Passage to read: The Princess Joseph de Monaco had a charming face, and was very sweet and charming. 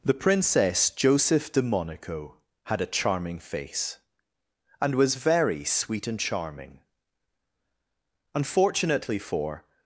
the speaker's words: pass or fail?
fail